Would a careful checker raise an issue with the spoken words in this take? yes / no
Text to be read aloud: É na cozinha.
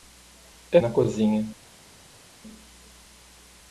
no